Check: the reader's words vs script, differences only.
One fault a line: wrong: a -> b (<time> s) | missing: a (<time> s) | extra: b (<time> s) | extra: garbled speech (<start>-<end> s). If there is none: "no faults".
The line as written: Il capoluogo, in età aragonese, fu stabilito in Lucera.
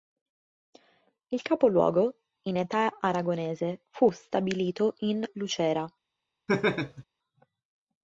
no faults